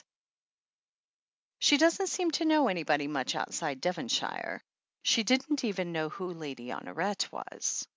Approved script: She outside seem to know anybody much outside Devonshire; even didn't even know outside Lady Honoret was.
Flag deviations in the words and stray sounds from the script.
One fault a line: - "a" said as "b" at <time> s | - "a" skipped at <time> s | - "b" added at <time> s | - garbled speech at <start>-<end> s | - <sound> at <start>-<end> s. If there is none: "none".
- "outside" said as "doesn't" at 1.8 s
- "even" said as "she" at 5.0 s
- "outside" said as "who" at 6.1 s